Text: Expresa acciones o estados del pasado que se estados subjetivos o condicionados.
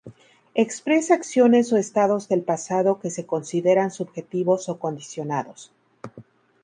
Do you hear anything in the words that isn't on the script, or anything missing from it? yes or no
yes